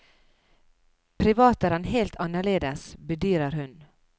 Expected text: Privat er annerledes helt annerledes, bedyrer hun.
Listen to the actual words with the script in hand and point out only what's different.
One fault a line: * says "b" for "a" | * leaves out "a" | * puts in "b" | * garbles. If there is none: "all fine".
* says "han" for "annerledes"